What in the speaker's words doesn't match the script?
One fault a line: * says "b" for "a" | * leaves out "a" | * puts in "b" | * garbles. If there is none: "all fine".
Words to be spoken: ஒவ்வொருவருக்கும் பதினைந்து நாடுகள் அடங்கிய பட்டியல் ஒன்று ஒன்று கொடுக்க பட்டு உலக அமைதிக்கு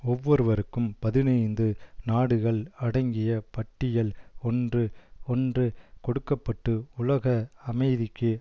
all fine